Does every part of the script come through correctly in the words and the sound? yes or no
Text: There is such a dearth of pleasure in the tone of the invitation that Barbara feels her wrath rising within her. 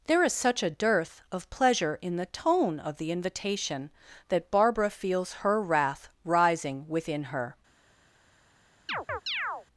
no